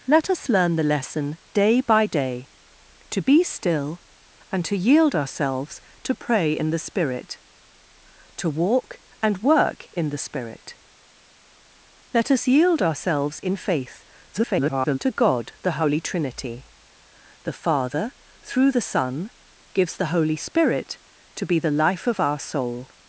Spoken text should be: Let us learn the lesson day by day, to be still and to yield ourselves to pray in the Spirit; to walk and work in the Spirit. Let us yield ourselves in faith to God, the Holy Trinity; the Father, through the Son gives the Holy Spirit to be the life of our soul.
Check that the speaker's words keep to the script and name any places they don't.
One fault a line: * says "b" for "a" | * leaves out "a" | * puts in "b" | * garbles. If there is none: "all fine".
* garbles